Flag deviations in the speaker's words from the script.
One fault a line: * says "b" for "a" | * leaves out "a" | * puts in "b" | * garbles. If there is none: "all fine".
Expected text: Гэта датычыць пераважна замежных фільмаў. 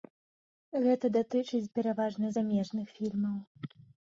all fine